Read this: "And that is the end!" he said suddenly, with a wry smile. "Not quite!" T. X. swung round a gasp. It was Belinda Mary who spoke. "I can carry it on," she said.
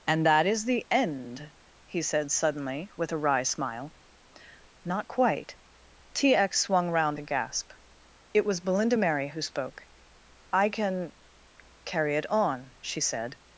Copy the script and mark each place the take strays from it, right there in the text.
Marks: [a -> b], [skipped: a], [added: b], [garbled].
"And that is the end!" he said suddenly, with a wry smile. "Not quite!" T. X. swung round a gasp. It was Belinda Mary who spoke. "I can carry it on," she said.